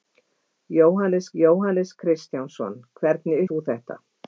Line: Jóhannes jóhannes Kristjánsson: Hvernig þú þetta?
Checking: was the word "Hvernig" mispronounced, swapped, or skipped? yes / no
no